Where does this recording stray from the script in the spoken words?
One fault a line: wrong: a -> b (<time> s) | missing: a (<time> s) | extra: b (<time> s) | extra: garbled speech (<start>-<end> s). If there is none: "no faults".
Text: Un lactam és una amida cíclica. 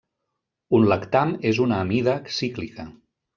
no faults